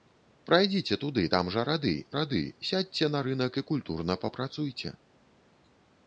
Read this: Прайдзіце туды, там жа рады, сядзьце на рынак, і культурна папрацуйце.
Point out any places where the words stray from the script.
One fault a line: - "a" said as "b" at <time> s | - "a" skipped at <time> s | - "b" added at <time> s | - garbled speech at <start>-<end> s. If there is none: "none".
- "рады" added at 2.2 s